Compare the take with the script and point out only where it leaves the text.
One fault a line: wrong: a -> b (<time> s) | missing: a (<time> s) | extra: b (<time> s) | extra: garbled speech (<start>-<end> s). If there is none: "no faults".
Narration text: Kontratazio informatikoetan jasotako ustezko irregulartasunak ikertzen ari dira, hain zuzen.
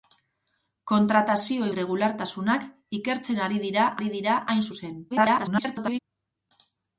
wrong: informatikoetan jasotako ustezko irregulartasunak ikertzen -> irregulartasunak ikertzen ari dira (1.7 s)
extra: garbled speech (5.1-6.0 s)